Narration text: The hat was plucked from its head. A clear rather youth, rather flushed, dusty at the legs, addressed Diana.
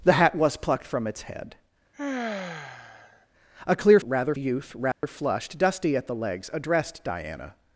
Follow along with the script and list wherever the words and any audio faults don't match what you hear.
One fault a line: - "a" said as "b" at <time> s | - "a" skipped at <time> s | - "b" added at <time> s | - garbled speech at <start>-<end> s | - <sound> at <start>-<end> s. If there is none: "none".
- sigh at 1.9-3.3 s
- dropout at 4.9-5.0 s